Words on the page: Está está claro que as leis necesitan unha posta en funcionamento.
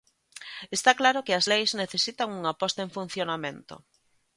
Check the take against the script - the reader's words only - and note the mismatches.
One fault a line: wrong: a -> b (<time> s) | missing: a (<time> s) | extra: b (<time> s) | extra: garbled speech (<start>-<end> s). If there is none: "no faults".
missing: está (0.9 s)